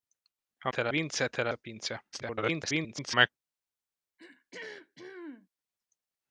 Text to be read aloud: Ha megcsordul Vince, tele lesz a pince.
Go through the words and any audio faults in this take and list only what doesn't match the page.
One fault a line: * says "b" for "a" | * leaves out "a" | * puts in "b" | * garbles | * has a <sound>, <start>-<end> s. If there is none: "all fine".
* says "tele" for "megcsordul"
* leaves out "lesz"
* garbles
* has a throat clearing, 4.2-5.5 s